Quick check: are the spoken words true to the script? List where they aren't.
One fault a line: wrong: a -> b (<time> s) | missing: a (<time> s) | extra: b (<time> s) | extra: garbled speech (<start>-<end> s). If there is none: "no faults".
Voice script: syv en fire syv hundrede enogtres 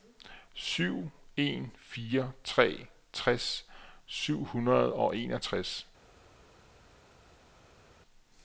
extra: tre tres (2.4 s)
extra: og (4.9 s)